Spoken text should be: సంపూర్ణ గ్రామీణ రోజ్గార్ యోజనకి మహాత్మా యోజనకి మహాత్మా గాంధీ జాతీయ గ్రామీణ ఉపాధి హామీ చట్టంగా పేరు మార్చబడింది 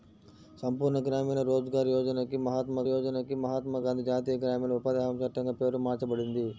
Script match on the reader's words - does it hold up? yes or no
yes